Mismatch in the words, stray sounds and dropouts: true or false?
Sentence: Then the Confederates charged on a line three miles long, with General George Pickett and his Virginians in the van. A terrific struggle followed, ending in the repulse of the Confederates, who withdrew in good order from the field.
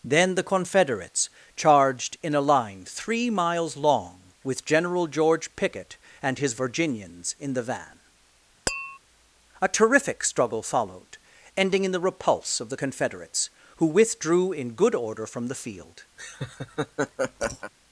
true